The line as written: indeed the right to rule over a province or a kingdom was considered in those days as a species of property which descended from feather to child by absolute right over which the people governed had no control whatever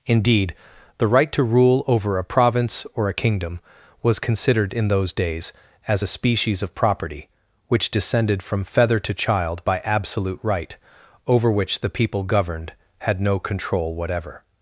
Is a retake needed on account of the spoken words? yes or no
no